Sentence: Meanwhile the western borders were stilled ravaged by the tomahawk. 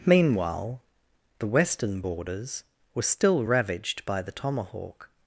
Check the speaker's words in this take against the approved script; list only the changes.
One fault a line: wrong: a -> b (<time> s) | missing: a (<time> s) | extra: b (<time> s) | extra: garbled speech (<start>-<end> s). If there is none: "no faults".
wrong: stilled -> still (3.0 s)